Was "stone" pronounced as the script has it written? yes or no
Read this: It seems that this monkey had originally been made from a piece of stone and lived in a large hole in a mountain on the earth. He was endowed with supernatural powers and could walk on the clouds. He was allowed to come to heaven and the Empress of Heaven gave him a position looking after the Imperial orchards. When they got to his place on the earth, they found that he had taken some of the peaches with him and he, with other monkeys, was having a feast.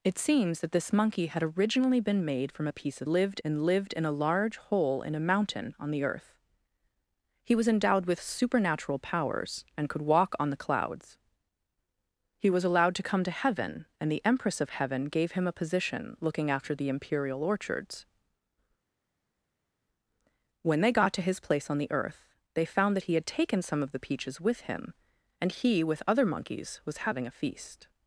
no